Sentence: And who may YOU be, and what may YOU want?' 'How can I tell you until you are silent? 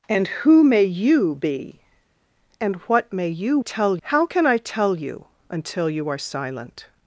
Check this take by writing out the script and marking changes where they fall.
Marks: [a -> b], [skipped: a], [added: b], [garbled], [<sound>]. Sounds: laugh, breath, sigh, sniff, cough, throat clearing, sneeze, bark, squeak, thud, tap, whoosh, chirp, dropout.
And who may YOU be, and what may YOU [want?' -> tell] 'How can I tell you until you are silent?